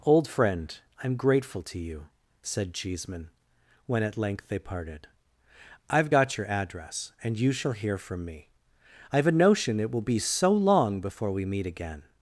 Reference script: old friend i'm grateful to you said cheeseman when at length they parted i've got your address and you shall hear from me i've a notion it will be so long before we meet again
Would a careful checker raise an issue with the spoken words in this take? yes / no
no